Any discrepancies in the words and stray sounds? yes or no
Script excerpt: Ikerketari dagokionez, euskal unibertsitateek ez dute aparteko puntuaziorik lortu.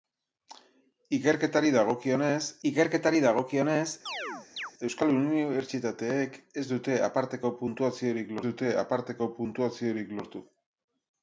yes